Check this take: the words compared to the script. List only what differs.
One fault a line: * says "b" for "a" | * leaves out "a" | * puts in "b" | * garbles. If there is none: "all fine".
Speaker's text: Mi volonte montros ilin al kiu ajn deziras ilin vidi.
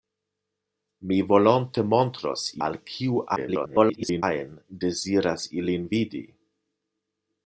* leaves out "ilin"
* garbles